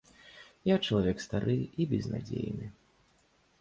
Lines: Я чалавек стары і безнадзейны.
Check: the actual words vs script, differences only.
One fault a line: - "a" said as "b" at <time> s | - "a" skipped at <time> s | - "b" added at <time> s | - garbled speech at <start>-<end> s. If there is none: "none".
none